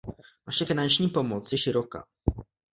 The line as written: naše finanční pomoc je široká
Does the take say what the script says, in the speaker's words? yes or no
yes